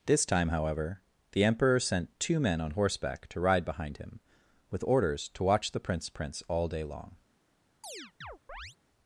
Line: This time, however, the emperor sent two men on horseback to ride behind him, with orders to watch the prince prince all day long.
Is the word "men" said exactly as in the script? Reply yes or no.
yes